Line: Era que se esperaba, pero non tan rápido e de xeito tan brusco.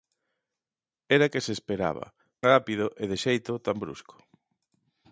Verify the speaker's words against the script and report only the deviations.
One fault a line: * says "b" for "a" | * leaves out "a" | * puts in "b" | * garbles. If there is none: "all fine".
* leaves out "pero non tan"